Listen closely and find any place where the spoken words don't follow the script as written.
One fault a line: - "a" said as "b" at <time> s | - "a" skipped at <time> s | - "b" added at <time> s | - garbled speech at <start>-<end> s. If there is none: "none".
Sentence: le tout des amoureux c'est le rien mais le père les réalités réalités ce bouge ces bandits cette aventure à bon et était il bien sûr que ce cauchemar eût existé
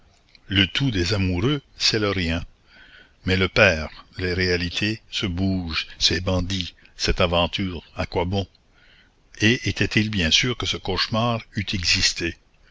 - "réalités" skipped at 5.0 s
- "quoi" added at 8.1 s